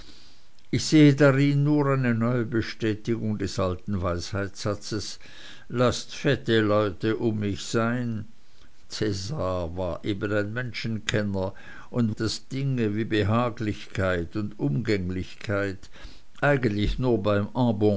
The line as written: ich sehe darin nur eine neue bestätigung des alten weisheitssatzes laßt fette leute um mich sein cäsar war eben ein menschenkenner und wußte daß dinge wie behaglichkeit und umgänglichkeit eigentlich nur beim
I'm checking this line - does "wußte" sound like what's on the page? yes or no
no